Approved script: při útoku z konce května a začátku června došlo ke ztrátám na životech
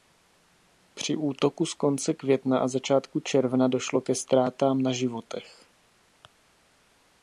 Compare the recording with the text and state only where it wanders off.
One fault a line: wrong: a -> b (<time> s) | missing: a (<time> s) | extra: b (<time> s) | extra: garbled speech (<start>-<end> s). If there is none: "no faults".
no faults